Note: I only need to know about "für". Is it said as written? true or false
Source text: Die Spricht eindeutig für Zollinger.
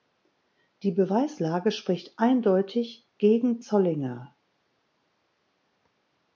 false